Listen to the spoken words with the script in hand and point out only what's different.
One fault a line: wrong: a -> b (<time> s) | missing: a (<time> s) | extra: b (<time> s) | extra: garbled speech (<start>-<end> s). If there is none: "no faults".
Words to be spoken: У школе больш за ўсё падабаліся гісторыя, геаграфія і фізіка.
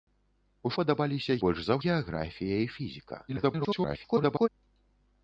wrong: школе -> падабаліся (0.8 s)
missing: ўсё падабаліся гісторыя (1.8 s)
extra: garbled speech (3.3-4.5 s)